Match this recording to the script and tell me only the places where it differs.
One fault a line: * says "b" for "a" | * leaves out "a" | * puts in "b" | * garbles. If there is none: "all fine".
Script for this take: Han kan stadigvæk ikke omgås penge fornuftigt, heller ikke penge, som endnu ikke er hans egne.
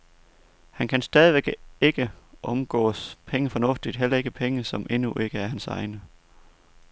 all fine